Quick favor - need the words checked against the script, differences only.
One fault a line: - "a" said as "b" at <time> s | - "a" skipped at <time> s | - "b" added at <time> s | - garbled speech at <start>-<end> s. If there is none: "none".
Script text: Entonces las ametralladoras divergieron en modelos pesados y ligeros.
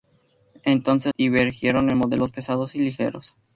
- "las ametralladoras" skipped at 1.1 s